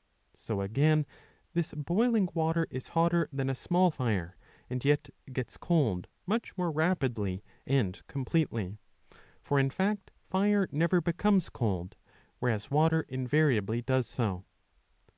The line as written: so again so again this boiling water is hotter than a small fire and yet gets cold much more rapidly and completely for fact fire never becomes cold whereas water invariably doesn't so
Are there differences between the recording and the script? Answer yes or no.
yes